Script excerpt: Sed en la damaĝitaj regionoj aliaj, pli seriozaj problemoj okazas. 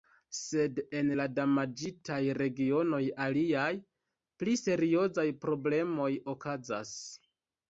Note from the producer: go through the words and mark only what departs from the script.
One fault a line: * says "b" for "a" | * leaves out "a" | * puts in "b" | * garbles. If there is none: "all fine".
all fine